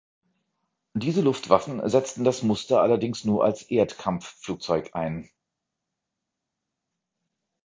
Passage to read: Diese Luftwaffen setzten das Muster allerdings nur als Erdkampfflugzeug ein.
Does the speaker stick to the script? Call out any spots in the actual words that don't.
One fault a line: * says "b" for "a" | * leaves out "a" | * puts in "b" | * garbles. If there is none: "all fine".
all fine